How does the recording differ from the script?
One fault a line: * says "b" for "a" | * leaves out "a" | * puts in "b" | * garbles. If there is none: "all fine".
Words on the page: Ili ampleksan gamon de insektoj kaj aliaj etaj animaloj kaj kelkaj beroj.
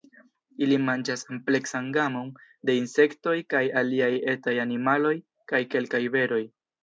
* puts in "manĝas"